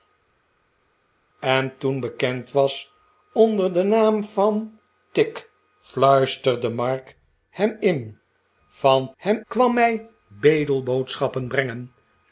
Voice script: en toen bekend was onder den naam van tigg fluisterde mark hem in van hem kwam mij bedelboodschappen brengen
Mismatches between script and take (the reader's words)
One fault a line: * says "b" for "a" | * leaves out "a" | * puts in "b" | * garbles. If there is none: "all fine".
all fine